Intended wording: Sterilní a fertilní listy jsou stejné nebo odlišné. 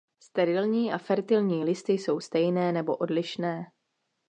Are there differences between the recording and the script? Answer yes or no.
no